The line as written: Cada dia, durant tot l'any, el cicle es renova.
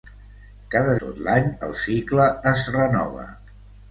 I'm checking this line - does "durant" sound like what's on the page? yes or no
no